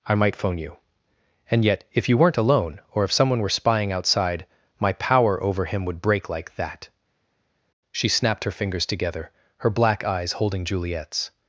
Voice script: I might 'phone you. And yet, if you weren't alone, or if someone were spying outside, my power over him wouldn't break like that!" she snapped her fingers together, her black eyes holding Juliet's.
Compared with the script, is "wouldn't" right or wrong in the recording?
wrong